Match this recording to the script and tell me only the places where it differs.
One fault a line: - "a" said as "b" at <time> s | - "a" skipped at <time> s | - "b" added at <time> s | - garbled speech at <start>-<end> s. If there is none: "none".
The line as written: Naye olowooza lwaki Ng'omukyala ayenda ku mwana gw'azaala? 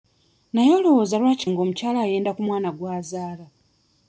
none